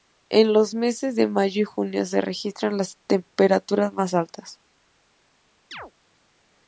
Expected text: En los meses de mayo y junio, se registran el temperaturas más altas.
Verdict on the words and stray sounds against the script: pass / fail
fail